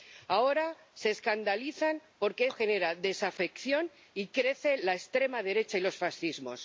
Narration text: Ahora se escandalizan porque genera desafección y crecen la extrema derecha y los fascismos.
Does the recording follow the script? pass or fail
pass